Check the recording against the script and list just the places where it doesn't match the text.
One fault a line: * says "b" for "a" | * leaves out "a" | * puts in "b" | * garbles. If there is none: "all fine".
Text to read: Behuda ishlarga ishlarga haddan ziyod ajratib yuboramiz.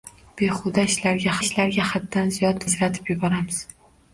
all fine